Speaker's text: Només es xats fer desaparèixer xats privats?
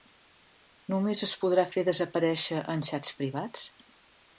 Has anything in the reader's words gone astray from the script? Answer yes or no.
yes